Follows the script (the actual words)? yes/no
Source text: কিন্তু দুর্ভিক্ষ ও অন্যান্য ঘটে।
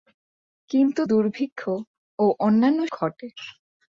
yes